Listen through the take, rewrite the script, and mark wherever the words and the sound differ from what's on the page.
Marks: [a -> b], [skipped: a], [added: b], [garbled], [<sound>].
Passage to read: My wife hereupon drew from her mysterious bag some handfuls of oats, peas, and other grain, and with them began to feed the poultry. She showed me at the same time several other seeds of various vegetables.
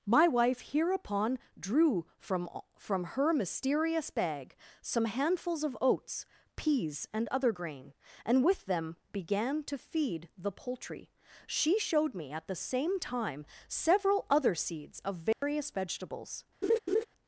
My wife hereupon drew from [added: from] her mysterious bag some handfuls of oats, peas, and other grain, and with them began to feed the poultry. She showed me at the same time several other seeds of various [dropout] vegetables. [laugh]